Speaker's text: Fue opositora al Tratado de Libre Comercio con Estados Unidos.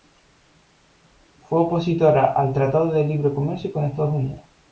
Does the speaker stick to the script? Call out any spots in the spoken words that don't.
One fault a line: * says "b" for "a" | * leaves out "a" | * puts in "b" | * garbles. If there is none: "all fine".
all fine